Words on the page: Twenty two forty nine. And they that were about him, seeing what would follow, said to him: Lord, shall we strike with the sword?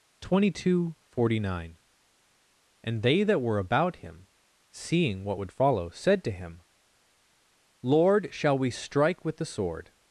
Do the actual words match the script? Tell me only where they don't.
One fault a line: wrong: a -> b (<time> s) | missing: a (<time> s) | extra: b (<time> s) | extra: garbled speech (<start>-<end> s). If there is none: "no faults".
no faults